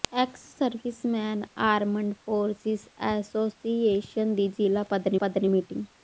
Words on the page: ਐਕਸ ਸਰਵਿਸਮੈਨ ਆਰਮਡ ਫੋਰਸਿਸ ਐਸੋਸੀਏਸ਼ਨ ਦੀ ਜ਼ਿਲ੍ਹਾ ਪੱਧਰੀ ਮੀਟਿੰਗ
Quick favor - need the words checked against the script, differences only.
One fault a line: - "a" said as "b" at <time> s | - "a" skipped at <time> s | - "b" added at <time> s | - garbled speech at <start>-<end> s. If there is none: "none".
- "ਪੱਧਰੀ" added at 5.2 s